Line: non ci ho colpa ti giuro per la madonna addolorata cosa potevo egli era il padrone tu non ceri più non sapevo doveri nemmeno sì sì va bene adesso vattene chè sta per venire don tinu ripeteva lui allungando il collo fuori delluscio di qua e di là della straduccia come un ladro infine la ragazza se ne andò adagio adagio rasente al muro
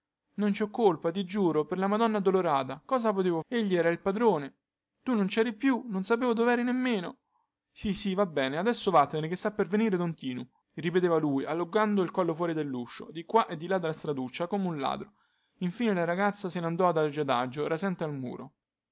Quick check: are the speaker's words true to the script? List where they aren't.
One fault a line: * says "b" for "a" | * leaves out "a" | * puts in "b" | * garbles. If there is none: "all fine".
all fine